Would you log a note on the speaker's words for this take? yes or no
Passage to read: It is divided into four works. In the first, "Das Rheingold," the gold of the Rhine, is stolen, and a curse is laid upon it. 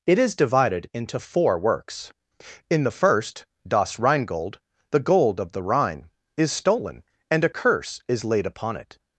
no